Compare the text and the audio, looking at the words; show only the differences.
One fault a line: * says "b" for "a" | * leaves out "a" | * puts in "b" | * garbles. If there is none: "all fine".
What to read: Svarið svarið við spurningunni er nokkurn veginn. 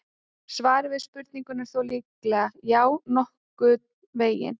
* leaves out "svarið"
* puts in "þó líklega Já"